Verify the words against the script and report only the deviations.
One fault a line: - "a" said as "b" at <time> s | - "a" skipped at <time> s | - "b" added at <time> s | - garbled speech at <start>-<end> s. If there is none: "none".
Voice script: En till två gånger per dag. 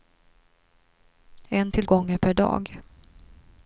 - "två" skipped at 1.9 s